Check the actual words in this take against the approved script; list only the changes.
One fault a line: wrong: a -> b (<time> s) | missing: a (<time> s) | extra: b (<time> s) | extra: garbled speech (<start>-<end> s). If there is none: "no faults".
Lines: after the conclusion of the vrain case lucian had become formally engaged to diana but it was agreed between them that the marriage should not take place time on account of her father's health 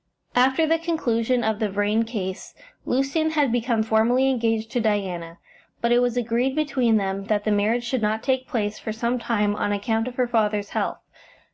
extra: for some (8.8 s)